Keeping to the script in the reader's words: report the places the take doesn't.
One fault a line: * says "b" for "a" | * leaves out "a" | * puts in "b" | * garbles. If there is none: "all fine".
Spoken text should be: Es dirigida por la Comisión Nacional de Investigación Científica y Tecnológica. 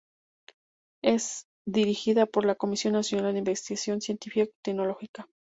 all fine